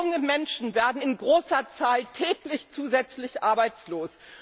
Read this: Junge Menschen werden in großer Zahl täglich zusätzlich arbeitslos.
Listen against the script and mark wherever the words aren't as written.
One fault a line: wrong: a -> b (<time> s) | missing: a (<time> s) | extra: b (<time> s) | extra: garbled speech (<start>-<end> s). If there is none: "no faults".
no faults